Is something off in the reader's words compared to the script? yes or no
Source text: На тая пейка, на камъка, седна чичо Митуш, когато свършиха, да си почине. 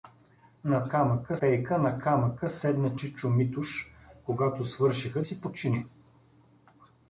yes